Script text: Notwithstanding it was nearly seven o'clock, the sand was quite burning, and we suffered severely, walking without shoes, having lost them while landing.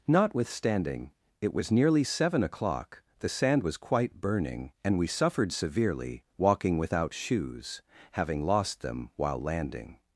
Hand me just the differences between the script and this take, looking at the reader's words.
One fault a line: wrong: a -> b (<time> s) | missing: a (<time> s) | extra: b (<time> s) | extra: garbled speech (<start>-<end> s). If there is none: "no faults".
no faults